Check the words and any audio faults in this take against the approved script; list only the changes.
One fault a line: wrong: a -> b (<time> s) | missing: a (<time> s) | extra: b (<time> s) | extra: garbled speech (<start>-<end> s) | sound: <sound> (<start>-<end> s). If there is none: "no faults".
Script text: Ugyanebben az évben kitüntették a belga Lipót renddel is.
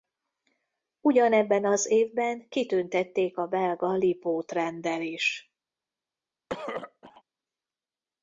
sound: throat clearing (6.5-7.2 s)